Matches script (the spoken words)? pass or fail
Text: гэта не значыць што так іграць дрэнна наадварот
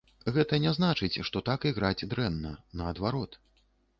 pass